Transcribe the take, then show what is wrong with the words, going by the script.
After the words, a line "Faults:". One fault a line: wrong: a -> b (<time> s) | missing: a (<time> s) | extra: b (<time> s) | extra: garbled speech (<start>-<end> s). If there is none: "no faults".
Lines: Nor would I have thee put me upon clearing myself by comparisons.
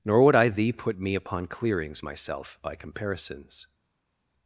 Nor would I thee put me upon clearings myself by comparisons.
Faults:
missing: have (0.5 s)
wrong: clearing -> clearings (1.5 s)